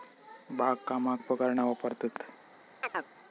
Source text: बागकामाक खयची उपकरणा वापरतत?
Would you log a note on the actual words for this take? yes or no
yes